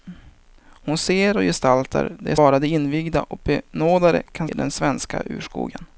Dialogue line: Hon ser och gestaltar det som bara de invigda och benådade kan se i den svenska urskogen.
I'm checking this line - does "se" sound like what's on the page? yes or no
no